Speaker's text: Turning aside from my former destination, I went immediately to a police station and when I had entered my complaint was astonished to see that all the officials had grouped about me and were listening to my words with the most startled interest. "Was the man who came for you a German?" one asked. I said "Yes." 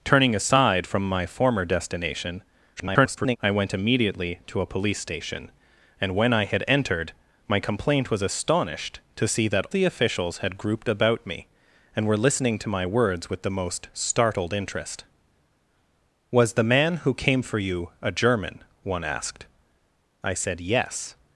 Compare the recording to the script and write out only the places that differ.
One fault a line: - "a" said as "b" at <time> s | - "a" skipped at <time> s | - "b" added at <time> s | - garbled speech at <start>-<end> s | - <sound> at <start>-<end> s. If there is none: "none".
- garbled speech at 2.8-3.4 s
- "all" skipped at 9.7 s